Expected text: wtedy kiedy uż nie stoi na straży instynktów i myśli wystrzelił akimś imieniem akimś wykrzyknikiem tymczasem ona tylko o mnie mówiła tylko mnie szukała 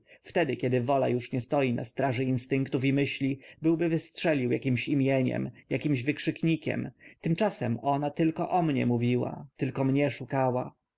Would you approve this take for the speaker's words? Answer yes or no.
no